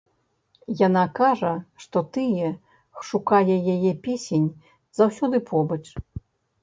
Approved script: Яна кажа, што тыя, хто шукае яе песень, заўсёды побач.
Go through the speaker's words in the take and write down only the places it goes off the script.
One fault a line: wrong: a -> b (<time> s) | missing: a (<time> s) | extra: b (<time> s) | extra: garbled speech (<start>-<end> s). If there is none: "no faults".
missing: хто (2.5 s)